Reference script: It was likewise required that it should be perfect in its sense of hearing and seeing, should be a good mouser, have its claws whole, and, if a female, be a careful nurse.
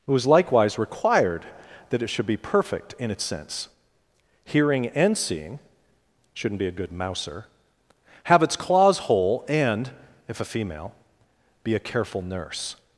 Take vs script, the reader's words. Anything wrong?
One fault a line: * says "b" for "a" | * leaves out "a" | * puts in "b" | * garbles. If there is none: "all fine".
* leaves out "of"
* says "shouldn't" for "should"